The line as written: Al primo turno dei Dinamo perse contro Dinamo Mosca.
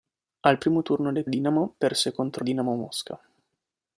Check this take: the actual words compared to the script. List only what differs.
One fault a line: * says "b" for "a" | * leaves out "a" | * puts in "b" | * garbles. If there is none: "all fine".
all fine